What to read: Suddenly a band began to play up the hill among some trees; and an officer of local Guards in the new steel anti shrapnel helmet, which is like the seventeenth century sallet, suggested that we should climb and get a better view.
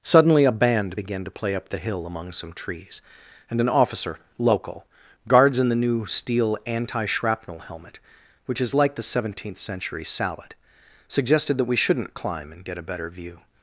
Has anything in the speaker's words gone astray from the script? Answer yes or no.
yes